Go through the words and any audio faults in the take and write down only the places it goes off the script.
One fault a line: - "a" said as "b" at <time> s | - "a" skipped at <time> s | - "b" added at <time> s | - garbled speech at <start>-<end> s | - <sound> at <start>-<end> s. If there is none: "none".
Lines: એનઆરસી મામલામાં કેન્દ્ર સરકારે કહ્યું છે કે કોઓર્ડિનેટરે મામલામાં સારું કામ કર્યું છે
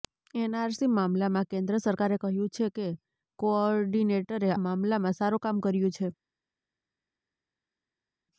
none